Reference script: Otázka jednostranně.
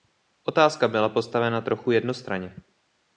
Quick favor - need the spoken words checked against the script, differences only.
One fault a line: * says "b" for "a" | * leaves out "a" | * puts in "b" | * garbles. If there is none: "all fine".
* puts in "byla postavena trochu"